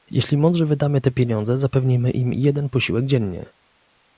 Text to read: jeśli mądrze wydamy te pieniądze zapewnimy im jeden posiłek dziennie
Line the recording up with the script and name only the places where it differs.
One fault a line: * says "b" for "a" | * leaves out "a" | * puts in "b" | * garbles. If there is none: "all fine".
all fine